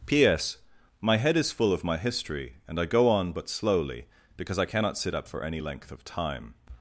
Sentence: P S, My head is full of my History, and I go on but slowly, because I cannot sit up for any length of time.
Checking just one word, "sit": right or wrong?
right